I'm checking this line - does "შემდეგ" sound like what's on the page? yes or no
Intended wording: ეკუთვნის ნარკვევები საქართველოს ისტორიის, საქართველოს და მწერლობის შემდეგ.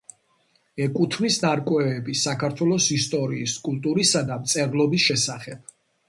no